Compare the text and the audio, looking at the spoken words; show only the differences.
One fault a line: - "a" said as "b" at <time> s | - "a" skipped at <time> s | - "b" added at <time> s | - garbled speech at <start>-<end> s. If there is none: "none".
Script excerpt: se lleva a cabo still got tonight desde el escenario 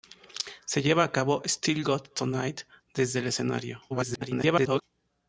- garbled speech at 3.9-4.8 s